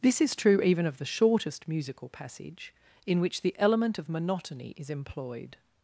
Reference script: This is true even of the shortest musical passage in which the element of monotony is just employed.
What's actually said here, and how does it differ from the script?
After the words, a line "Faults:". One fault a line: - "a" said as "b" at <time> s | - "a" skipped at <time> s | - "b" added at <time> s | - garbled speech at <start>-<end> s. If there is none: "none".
This is true even of the shortest musical passage in which the element of monotony is employed.
Faults:
- "just" skipped at 4.9 s